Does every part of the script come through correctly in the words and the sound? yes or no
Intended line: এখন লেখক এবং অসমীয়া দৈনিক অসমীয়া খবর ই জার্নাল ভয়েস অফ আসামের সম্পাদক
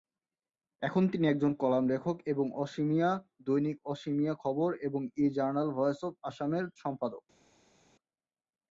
no